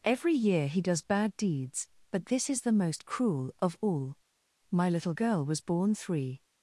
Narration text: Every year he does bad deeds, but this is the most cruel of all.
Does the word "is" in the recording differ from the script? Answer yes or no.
no